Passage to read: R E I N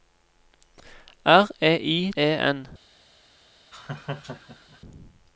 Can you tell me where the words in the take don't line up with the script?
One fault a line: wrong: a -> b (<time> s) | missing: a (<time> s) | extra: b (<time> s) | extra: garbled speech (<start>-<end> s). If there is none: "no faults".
no faults